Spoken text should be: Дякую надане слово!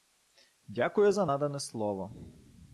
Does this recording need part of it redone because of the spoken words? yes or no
yes